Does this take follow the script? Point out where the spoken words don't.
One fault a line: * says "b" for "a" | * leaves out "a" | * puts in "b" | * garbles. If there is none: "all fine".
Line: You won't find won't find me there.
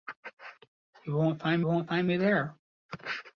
all fine